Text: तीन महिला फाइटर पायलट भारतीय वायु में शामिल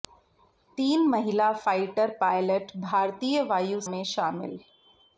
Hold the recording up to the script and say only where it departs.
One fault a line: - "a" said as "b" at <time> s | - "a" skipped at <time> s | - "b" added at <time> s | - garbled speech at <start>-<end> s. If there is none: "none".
none